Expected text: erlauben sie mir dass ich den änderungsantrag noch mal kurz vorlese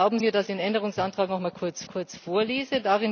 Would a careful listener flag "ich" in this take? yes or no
yes